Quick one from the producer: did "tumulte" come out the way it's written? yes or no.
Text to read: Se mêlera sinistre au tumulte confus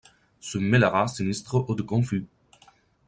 no